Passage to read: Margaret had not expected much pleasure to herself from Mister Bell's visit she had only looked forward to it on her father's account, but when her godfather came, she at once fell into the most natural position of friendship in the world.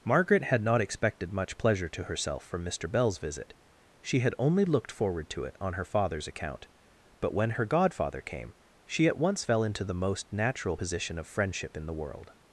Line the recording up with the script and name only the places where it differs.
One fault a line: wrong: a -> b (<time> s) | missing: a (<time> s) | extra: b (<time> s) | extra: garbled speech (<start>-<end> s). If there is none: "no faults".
no faults